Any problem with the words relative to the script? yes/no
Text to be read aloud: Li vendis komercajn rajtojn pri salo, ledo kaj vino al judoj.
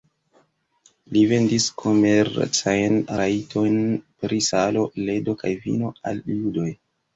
no